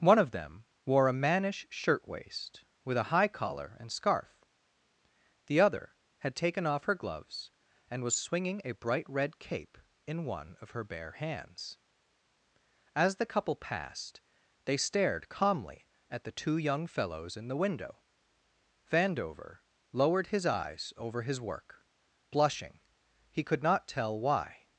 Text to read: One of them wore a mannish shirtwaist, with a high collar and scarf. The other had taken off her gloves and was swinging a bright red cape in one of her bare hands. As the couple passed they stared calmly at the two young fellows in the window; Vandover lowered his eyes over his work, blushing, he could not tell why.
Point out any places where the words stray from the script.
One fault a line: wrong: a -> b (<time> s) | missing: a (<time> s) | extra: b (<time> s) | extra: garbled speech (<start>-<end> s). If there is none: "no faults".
no faults